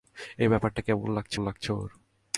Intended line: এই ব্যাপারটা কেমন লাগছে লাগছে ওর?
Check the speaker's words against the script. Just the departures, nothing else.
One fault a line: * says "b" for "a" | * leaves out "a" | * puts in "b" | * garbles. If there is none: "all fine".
all fine